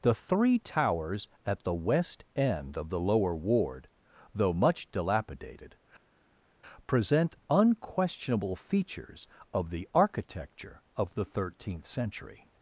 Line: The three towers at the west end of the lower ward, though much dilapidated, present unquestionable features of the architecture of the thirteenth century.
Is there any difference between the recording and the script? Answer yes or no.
no